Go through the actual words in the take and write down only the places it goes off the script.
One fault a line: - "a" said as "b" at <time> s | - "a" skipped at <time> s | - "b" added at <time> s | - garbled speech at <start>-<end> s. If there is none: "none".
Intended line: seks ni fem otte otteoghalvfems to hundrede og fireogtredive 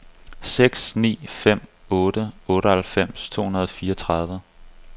none